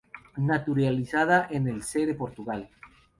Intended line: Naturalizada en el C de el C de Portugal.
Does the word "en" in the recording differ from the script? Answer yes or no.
no